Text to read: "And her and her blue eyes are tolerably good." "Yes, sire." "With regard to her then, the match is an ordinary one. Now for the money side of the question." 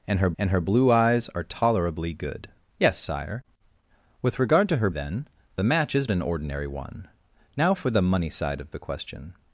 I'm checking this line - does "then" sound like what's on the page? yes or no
yes